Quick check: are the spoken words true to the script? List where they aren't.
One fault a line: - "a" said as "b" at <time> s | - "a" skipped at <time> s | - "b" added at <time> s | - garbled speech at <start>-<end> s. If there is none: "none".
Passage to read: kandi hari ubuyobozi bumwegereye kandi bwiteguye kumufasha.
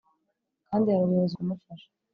- "bumwegereye kandi bwiteguye" skipped at 1.3 s